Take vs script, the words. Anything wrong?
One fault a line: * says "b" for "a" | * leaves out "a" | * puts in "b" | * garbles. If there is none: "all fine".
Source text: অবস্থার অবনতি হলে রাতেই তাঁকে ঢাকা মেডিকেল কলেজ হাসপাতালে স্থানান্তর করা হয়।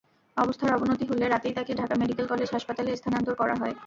all fine